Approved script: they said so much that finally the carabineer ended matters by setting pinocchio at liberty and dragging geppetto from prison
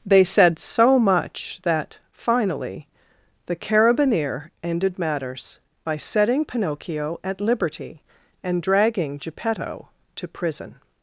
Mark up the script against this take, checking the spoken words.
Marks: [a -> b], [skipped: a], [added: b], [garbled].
they said so much that finally the carabineer ended matters by setting pinocchio at liberty and dragging geppetto [from -> to] prison